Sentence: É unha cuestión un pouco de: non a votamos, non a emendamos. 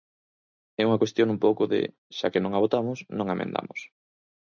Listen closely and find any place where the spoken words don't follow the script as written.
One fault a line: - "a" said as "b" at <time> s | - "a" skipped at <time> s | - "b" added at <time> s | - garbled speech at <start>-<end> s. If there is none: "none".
- "xa que" added at 2.2 s